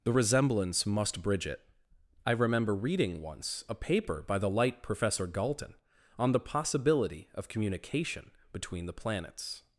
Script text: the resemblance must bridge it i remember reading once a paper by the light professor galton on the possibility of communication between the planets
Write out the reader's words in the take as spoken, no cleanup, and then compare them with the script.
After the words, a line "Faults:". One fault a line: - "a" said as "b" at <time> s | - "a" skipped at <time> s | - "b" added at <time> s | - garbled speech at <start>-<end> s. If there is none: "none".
the resemblance must bridge it i remember reading once a paper by the light professor galton on the possibility of communication between the planets
Faults:
none